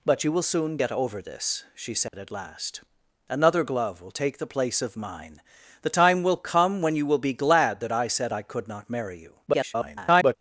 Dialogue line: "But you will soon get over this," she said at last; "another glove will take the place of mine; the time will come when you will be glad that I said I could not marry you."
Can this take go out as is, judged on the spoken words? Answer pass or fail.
fail